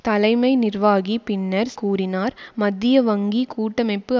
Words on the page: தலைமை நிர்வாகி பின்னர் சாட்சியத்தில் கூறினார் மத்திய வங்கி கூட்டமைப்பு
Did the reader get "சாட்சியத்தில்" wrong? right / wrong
wrong